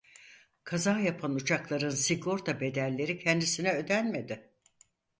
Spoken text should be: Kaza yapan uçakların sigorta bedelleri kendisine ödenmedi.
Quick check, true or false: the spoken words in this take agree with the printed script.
true